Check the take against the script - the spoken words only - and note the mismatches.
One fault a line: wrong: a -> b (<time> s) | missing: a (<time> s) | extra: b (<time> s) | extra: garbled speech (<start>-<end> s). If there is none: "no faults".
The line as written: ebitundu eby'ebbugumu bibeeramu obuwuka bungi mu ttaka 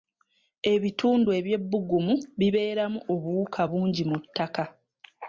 no faults